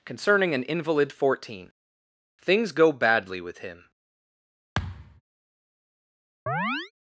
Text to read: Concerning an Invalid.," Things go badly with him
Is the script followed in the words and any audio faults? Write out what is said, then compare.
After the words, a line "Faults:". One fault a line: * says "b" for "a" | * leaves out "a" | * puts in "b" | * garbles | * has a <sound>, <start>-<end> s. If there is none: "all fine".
Concerning an Invalid.," fourteen Things go badly with him
Faults:
* puts in "fourteen"
* has a thud, 4.7-5.2 s
* has a chirp, 6.5-6.9 s